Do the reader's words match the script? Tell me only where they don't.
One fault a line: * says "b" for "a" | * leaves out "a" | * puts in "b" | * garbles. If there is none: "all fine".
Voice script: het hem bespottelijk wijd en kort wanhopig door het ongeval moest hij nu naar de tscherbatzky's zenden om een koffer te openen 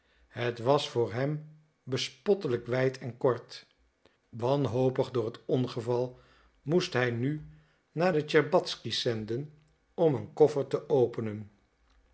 * puts in "was voor"